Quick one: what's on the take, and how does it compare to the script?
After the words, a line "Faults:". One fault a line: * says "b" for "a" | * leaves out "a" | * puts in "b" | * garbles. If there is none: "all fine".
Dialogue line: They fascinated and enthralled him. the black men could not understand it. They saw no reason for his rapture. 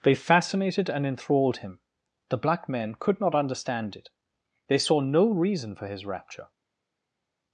They fascinated and enthralled him. the black men could not understand it. They saw no reason for his rapture.
Faults:
all fine